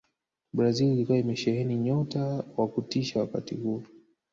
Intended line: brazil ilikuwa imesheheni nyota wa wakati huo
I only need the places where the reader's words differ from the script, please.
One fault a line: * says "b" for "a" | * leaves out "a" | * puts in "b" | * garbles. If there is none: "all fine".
* puts in "kutisha"